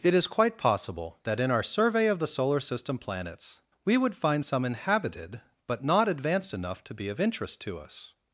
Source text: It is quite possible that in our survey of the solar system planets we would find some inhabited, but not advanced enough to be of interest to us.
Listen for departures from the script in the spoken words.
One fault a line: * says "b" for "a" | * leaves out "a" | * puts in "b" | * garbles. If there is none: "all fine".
all fine